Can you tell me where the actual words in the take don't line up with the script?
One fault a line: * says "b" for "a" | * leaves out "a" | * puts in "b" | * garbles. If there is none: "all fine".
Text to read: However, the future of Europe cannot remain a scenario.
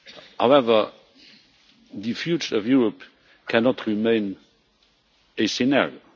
all fine